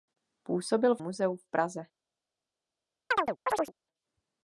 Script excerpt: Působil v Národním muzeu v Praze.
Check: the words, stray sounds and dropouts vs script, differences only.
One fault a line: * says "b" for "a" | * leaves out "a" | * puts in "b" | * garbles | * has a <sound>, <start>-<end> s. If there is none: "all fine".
* leaves out "Národním"
* has a chirp, 3.1-3.7 s